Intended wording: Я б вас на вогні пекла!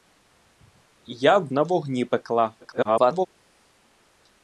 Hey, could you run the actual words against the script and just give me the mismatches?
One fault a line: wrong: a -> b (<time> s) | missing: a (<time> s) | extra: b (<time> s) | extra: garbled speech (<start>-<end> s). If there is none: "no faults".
missing: вас (1.5 s)
extra: garbled speech (2.6-3.3 s)